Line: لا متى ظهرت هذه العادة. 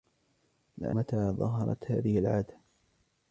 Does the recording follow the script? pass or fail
pass